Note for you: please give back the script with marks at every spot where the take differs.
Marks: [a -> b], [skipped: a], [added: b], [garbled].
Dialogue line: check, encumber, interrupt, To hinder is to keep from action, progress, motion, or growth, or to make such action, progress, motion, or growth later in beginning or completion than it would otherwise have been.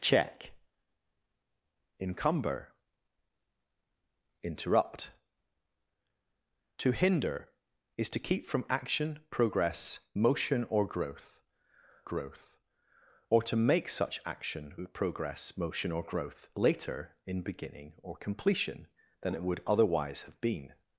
check, encumber, interrupt, To hinder is to keep from action, progress, motion, or growth, [added: growth] or to make such action, progress, motion, or growth later in beginning or completion than it would otherwise have been.